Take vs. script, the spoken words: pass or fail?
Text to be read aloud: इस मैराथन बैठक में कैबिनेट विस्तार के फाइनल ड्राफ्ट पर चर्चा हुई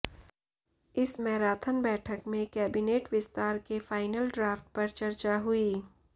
pass